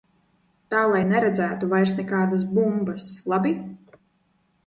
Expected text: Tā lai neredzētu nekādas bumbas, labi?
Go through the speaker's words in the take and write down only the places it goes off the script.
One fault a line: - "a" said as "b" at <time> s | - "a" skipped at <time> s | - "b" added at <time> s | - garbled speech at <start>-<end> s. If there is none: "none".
- "vairs" added at 1.7 s